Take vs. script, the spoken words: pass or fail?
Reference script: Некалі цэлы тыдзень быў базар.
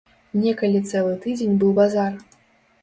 pass